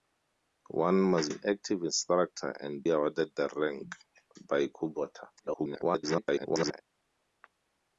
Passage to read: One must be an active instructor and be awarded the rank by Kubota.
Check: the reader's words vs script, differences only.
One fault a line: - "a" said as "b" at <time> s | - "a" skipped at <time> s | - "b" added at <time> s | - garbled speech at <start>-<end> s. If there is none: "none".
- "be" skipped at 1.3 s
- "be" skipped at 2.8 s
- garbled speech at 5.4-6.8 s